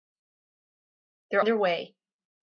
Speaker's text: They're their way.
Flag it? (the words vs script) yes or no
no